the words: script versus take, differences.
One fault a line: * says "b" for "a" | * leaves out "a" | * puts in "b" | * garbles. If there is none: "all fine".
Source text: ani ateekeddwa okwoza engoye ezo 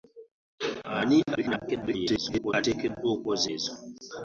* garbles
* leaves out "engoye"